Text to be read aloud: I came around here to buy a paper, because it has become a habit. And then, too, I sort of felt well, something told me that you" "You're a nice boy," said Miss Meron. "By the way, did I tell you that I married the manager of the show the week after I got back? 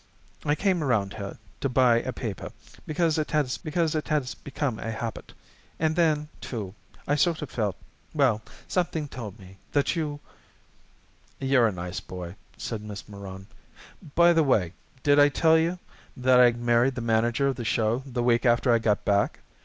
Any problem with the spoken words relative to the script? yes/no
yes